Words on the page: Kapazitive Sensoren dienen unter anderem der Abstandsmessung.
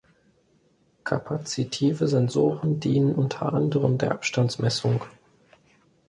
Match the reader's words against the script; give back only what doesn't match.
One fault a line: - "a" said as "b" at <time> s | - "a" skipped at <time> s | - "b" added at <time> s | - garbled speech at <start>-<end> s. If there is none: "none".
none